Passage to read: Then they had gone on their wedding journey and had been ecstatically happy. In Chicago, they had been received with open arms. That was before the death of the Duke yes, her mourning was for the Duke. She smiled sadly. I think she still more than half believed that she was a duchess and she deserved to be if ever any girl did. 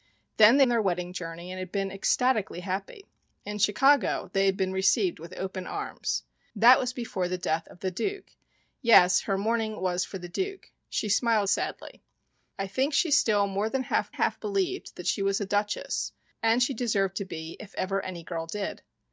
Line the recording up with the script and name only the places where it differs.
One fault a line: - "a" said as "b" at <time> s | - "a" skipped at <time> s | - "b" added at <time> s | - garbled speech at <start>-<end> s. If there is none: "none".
- "had gone" skipped at 0.7 s
- "half" added at 14.1 s